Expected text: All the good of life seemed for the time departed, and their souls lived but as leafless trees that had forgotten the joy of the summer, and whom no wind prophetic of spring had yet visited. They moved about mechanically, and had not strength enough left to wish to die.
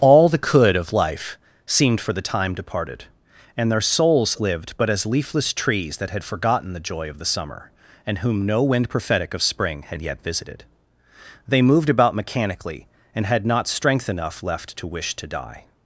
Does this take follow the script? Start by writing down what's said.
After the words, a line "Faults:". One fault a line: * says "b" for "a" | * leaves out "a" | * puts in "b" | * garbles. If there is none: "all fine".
All the could of life seemed for the time departed, and their souls lived but as leafless trees that had forgotten the joy of the summer, and whom no wind prophetic of spring had yet visited. They moved about mechanically, and had not strength enough left to wish to die.
Faults:
* says "could" for "good"